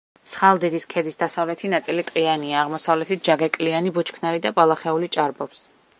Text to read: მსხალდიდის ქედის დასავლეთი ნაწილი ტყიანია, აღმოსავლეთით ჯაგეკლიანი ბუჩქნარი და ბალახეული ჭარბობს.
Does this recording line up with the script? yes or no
yes